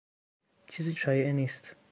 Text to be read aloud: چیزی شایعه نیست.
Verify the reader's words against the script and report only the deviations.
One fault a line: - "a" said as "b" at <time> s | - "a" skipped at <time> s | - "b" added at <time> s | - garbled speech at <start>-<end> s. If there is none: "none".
none